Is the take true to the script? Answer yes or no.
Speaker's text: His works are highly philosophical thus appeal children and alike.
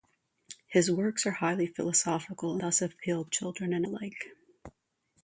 yes